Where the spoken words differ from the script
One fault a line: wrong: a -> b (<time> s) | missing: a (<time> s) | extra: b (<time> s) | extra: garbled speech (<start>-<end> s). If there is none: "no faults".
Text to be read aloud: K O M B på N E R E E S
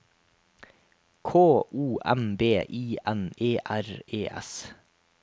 wrong: på -> I (2.6 s)
missing: E (4.3 s)